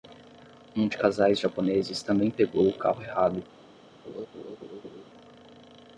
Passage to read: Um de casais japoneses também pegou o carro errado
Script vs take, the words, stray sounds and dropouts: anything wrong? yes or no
yes